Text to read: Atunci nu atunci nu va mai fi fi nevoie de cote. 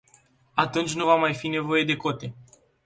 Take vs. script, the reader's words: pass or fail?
fail